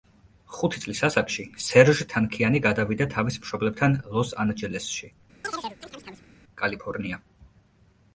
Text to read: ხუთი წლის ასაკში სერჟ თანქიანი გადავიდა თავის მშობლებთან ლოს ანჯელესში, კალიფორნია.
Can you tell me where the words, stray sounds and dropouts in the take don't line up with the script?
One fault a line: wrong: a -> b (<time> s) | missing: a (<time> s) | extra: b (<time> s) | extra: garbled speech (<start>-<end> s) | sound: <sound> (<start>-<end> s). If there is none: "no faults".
sound: chirp (5.4-6.3 s)